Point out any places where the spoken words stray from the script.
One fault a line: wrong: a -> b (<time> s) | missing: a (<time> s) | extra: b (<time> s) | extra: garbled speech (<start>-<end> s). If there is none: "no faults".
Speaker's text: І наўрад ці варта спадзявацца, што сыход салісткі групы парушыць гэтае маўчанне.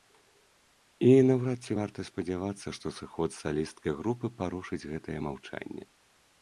no faults